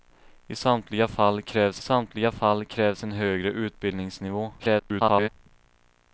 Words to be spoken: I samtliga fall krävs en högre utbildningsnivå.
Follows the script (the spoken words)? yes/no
no